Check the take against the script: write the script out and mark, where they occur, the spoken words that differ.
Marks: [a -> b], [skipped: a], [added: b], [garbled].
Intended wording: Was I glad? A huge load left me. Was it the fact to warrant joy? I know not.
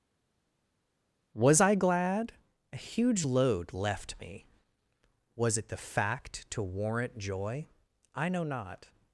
Was I glad? A huge load left me. Was it the fact to warrant joy? I know not.